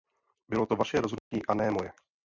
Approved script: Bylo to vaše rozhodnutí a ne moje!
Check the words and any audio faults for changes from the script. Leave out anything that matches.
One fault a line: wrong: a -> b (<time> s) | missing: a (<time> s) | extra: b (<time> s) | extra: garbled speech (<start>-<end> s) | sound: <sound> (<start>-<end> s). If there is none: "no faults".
sound: dropout (1.2-1.3 s)